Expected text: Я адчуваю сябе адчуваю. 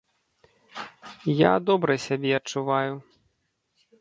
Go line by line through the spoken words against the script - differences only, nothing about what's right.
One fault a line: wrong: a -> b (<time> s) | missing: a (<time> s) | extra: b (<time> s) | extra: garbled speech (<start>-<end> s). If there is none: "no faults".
wrong: адчуваю -> добра (1.6 s)